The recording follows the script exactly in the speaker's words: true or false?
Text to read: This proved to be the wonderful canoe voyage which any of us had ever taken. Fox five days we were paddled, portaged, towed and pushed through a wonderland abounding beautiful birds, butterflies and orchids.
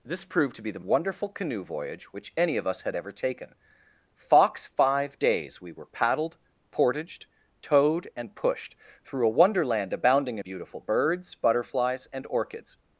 true